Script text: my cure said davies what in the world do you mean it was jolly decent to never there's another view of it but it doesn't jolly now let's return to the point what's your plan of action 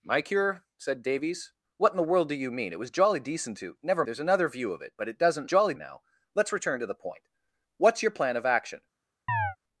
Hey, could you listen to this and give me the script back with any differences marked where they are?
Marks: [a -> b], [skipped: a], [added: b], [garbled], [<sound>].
my cure said davies what in the world do you mean it was jolly decent to never there's another view of it but it doesn't jolly now let's return to the point what's your plan of action [chirp]